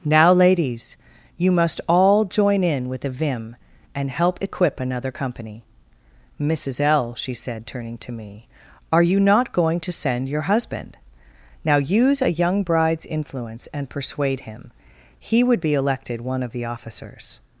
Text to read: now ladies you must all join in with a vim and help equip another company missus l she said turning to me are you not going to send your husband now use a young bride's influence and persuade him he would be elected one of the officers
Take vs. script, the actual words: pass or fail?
pass